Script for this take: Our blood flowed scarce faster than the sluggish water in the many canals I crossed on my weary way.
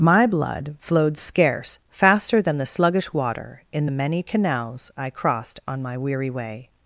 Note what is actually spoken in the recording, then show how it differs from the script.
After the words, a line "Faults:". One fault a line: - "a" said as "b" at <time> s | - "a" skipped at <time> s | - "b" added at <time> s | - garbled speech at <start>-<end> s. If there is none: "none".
My blood flowed scarce faster than the sluggish water in the many canals I crossed on my weary way.
Faults:
- "Our" said as "My" at 0.0 s